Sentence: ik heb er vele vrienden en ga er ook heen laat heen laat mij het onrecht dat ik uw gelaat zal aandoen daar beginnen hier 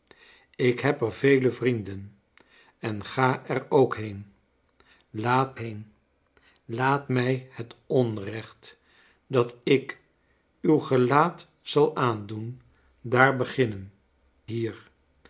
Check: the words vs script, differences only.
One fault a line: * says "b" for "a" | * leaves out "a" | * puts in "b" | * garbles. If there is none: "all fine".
all fine